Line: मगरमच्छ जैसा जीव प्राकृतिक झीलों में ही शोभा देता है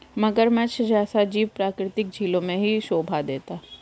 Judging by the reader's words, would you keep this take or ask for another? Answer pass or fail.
pass